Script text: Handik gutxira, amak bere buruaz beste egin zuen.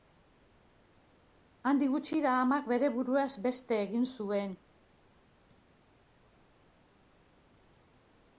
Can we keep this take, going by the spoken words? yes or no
yes